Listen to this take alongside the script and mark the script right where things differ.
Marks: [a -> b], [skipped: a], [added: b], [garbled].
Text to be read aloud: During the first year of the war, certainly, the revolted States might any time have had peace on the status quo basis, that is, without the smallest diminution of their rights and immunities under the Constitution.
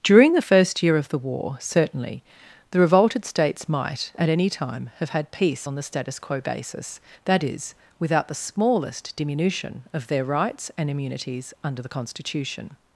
During the first year of the war, certainly, the revolted States might [added: at] any time have had peace on the status quo basis, that is, without the smallest diminution of their rights and immunities under the Constitution.